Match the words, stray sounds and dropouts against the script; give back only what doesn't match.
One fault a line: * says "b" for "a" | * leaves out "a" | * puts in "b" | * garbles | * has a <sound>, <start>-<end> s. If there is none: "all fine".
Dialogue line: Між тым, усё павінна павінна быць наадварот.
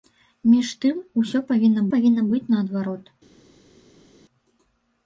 all fine